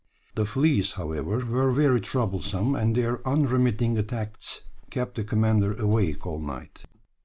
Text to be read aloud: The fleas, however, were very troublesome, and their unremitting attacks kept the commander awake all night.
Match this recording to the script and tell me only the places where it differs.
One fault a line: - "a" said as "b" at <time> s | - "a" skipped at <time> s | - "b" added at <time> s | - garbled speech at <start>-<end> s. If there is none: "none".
none